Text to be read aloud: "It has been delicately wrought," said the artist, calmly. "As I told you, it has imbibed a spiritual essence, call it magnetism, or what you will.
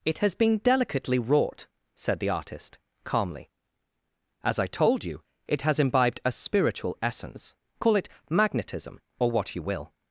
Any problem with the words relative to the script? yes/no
no